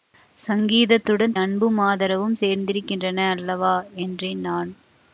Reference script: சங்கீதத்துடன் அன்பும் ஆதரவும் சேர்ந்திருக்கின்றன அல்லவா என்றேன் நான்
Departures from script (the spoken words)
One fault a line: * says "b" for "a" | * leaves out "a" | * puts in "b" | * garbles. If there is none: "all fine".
all fine